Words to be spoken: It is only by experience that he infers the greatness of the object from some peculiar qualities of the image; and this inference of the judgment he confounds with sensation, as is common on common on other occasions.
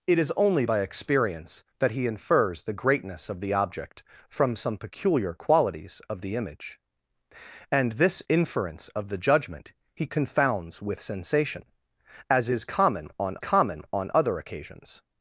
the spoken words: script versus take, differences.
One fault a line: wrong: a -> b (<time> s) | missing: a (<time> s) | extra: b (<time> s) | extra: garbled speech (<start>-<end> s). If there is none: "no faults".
no faults